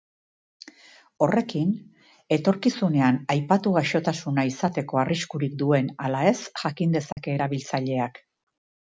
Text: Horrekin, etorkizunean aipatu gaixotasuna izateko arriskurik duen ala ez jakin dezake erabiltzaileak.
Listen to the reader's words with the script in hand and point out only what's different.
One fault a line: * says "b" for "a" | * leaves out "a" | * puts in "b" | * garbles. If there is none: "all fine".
all fine